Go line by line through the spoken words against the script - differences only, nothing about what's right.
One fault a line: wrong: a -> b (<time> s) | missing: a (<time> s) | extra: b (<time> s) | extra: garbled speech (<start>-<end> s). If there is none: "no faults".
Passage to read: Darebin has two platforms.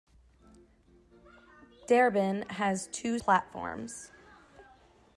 no faults